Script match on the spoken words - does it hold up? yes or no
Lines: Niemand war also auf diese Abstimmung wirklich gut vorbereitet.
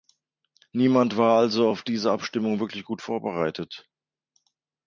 yes